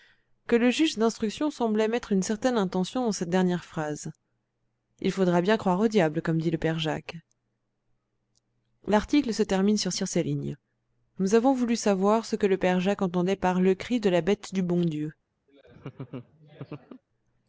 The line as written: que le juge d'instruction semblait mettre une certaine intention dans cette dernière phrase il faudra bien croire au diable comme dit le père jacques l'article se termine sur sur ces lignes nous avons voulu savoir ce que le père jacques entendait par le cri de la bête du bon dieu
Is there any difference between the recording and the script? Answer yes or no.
no